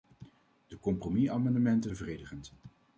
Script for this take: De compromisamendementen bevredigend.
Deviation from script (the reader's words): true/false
false